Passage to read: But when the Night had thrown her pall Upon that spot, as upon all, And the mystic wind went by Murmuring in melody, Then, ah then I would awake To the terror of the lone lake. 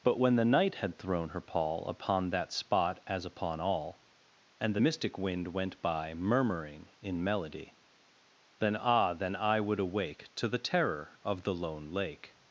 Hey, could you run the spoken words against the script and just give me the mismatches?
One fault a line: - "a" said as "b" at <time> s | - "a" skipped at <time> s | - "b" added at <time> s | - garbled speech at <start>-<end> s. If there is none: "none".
none